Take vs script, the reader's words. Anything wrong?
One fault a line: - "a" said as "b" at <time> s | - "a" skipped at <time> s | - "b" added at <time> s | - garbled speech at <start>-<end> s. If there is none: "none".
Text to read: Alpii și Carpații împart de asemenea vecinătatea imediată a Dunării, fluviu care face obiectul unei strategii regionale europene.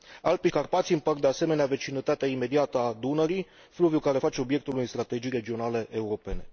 - "și" skipped at 0.5 s